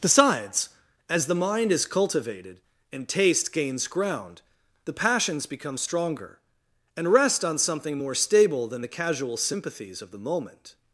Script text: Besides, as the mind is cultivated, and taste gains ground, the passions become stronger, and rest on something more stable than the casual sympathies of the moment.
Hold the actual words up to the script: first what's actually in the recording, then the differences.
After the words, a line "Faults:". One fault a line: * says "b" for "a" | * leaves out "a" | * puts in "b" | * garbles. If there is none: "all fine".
Besides, as the mind is cultivated, and taste gains ground, the passions become stronger, and rest on something more stable than the casual sympathies of the moment.
Faults:
all fine